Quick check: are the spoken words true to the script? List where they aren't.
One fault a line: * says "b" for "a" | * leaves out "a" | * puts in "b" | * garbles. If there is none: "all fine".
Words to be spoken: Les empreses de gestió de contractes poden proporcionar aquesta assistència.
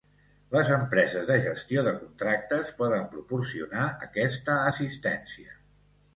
all fine